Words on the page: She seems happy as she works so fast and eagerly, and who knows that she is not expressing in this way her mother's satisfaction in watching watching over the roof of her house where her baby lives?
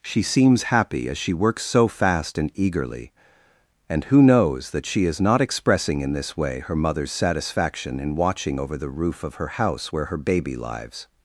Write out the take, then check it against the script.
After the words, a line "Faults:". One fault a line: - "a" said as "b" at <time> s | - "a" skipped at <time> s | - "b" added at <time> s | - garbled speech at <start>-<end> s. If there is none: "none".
She seems happy as she works so fast and eagerly, and who knows that she is not expressing in this way her mother's satisfaction in watching over the roof of her house where her baby lives?
Faults:
- "watching" skipped at 8.6 s